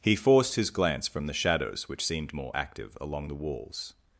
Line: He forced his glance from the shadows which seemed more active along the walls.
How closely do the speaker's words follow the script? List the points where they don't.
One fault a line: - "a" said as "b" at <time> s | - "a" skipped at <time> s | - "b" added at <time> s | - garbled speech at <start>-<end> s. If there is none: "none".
none